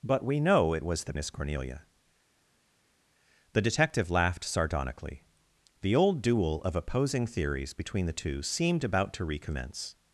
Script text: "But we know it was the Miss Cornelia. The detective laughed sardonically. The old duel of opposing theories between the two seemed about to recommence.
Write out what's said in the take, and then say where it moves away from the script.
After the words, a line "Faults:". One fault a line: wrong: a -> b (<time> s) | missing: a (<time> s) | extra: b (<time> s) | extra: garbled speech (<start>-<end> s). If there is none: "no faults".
"But we know it was the Miss Cornelia. The detective laughed sardonically. The old duel of opposing theories between the two seemed about to recommence.
Faults:
no faults